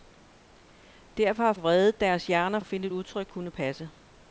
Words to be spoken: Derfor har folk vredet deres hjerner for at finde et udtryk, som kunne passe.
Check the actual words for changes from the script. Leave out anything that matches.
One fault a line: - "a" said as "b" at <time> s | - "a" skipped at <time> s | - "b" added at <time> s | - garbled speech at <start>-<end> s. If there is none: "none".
- "folk" skipped at 1.5 s
- "for" skipped at 2.6 s
- "som" skipped at 3.3 s